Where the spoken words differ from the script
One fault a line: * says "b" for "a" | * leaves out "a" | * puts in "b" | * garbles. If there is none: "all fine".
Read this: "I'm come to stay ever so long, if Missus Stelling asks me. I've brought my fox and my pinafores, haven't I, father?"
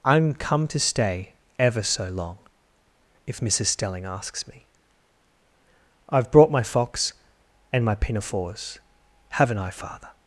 all fine